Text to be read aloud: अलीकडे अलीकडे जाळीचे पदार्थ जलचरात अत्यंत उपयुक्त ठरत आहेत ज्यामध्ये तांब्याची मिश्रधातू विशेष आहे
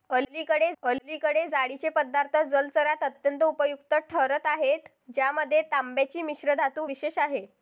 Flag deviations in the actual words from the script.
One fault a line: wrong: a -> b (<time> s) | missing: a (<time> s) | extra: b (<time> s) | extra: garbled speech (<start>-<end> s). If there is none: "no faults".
no faults